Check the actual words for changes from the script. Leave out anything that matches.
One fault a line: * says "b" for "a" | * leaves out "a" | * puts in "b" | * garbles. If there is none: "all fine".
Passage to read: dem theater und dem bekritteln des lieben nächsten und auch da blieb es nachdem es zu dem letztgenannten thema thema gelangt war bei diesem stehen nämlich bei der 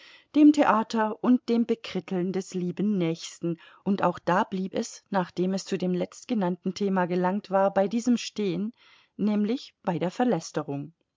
* leaves out "thema"